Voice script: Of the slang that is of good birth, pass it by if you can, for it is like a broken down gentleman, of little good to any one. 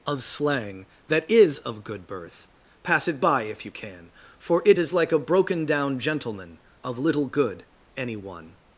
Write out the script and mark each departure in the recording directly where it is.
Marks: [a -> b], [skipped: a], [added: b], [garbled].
Of [skipped: the] slang that is of good birth, pass it by if you can, for it is like a broken down gentleman, of little good [skipped: to] any one.